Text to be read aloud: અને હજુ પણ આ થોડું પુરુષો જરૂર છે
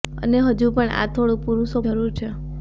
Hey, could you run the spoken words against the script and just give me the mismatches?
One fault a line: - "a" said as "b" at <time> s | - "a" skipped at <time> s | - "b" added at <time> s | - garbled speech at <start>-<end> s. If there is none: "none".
none